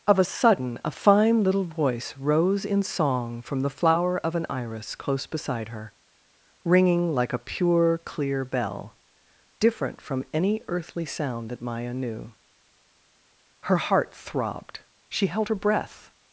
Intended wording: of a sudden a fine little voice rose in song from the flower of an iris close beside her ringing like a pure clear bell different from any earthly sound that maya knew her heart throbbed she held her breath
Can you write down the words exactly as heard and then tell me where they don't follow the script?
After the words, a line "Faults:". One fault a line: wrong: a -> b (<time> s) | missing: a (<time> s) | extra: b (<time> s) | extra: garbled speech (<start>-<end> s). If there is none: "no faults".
of a sudden a fine little voice rose in song from the flower of an iris close beside her ringing like a pure clear bell different from any earthly sound that maya knew her heart throbbed she held her breath
Faults:
no faults